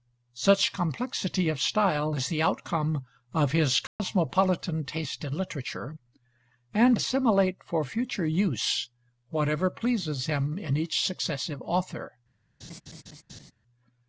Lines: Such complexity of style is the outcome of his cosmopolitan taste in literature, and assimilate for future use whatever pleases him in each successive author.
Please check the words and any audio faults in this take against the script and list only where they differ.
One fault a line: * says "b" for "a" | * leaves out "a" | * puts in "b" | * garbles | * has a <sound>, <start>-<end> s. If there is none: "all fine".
* has a dropout, 3.9-4.0 s
* has a laugh, 12.6-13.5 s